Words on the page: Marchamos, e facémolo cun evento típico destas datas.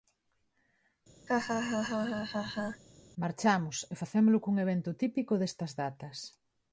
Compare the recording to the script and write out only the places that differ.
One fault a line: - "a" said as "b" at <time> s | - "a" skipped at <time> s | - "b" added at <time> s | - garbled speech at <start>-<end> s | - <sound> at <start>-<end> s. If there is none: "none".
- laugh at 1.3-2.8 s